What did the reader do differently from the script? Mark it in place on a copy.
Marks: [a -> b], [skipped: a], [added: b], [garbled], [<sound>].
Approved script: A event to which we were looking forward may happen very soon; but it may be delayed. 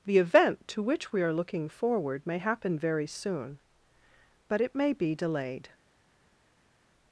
[A -> The] event to which we [were -> are] looking forward may happen very soon; but it may be delayed.